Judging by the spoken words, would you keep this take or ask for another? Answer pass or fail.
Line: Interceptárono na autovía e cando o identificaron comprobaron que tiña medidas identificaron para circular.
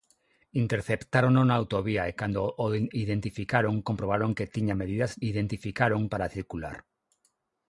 pass